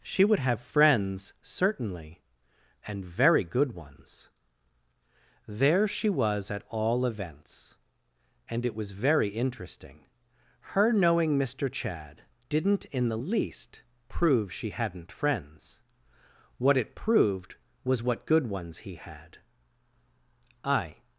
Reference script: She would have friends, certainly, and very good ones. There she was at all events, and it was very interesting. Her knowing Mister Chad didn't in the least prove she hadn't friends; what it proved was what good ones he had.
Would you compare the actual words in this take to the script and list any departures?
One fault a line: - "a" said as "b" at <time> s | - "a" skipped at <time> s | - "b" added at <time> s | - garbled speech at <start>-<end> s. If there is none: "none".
- "I" added at 20.6 s